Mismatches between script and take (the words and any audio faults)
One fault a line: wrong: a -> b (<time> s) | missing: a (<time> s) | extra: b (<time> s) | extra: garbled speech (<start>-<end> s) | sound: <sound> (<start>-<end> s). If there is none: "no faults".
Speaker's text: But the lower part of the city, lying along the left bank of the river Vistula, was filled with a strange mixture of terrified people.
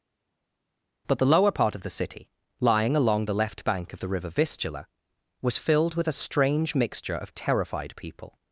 no faults